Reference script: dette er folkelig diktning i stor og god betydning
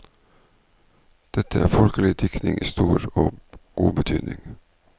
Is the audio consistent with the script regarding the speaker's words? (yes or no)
yes